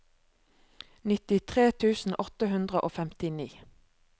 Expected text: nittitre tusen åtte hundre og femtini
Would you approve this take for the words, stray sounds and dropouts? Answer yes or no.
yes